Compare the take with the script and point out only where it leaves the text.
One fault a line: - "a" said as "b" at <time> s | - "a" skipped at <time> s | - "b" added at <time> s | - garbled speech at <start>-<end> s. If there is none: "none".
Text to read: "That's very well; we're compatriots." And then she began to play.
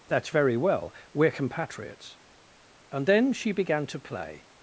none